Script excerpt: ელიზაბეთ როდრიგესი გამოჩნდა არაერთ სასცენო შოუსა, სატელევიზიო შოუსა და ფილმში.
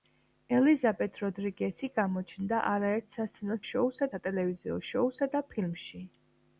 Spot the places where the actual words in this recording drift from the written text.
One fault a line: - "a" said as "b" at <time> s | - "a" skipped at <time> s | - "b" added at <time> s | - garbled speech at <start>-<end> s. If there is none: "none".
none